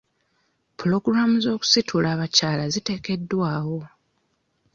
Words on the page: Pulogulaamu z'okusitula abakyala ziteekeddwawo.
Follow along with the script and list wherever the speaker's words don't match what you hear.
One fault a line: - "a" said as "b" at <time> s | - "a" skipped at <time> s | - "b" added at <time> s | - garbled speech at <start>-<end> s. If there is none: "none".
none